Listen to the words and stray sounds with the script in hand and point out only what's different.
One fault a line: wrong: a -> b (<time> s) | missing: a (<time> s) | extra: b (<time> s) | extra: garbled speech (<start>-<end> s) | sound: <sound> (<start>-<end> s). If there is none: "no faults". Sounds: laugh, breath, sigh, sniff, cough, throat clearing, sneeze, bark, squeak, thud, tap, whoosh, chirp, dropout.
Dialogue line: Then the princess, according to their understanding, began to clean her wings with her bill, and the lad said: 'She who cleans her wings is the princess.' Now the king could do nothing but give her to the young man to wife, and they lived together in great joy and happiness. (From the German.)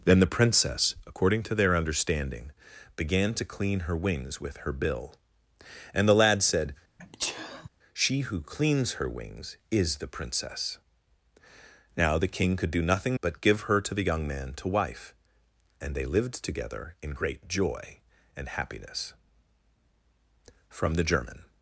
sound: sneeze (7.0-7.7 s)